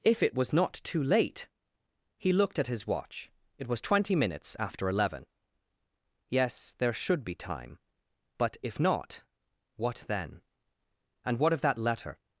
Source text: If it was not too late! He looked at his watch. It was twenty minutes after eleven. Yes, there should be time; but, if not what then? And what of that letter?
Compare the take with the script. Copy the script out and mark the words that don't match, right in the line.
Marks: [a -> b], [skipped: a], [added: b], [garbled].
If it was not too late! He looked at his watch. It was twenty minutes after eleven. Yes, there should be time; but, if not what then? And what of that letter?